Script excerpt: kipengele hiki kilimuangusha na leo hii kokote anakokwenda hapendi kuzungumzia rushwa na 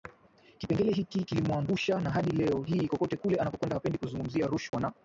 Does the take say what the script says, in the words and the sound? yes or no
no